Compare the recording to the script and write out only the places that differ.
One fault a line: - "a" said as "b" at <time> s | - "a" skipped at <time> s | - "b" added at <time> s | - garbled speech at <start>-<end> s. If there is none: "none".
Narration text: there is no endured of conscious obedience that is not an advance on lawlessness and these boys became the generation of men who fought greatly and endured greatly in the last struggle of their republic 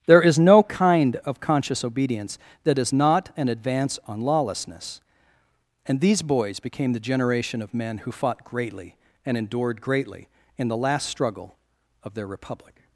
- "endured" said as "kind" at 0.6 s